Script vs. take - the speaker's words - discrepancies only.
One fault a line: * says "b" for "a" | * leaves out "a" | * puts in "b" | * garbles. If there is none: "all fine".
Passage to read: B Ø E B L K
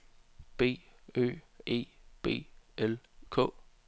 all fine